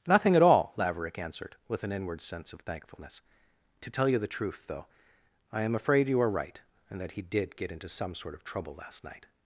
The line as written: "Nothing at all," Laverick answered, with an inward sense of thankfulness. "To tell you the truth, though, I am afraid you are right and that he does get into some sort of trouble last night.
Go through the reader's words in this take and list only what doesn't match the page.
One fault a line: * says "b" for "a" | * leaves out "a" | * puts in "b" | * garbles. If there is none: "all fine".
* says "did" for "does"